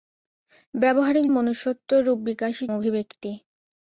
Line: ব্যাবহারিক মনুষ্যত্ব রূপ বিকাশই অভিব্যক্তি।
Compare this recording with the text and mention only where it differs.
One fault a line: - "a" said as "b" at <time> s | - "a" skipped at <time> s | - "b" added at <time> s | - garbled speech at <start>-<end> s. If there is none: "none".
none